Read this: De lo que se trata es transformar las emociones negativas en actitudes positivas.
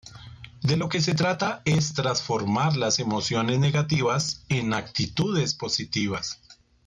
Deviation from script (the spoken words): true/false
false